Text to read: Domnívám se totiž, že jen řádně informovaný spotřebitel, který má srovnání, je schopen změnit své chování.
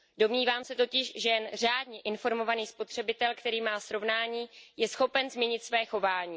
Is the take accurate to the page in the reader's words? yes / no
yes